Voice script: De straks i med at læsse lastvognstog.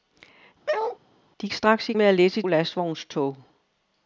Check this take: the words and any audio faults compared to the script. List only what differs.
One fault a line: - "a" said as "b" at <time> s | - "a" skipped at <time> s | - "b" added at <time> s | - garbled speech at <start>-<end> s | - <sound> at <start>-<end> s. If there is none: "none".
- bark at 0.7-1.0 s